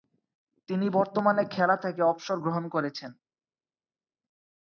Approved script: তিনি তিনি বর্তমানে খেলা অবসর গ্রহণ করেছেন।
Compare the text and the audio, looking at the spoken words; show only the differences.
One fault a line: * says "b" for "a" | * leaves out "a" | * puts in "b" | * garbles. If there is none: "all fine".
* leaves out "তিনি"
* puts in "থেকে"